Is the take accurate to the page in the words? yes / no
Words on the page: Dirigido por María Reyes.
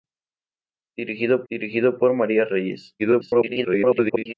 no